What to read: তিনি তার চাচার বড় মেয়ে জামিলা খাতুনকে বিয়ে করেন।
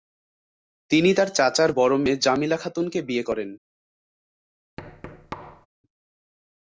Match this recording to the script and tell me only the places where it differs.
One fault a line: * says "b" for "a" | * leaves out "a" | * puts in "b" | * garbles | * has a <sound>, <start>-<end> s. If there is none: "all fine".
* has a thud, 4.8-5.7 s